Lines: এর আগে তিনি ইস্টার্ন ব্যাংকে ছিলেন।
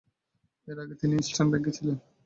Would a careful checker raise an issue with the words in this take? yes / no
no